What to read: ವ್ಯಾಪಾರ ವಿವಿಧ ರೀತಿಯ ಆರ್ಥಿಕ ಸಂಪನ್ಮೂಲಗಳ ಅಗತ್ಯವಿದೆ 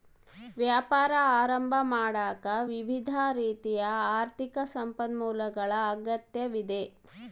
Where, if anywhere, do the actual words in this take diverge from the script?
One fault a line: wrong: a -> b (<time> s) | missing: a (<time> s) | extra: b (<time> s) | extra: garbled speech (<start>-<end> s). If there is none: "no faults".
extra: ಆರಂಭ ಮಾಡಾಕ (1.4 s)